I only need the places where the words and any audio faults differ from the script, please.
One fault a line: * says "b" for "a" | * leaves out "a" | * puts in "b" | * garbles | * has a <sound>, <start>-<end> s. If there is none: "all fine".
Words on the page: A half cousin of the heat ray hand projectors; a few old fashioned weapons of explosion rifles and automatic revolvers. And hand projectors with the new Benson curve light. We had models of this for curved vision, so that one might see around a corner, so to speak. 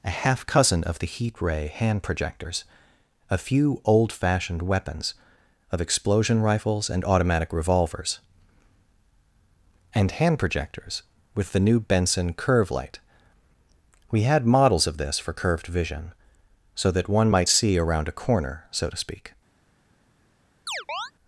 * has a chirp, 20.7-21.1 s